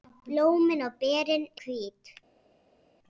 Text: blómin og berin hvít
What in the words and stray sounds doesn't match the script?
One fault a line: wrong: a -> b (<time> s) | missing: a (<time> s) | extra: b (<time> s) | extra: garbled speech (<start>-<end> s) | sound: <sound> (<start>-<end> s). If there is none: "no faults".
no faults